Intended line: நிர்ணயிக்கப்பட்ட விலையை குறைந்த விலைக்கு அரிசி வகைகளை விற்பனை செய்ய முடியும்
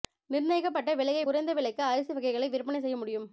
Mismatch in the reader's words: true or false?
false